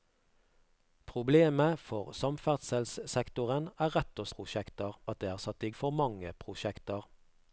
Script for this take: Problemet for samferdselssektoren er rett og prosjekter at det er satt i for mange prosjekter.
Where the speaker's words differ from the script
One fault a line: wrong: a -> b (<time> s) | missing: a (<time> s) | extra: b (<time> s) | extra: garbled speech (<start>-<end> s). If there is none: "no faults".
no faults